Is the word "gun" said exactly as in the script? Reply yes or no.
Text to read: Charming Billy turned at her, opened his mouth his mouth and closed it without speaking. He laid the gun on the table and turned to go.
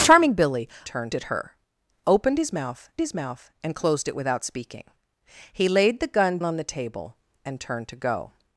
yes